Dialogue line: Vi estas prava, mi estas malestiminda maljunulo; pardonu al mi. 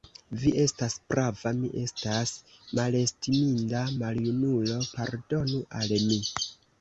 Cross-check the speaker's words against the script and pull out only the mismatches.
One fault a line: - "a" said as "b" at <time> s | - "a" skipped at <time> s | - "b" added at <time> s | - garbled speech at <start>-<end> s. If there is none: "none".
none